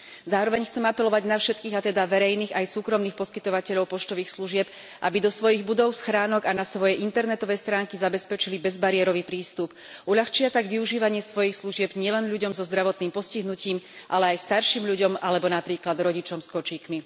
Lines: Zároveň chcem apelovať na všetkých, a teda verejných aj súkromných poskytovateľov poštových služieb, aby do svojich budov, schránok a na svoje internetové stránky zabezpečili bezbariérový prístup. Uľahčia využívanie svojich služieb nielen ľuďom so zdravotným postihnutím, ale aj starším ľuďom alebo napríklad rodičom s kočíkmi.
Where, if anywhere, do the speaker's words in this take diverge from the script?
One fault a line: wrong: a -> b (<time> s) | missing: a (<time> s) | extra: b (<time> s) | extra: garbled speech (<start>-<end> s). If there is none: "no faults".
extra: tak (10.5 s)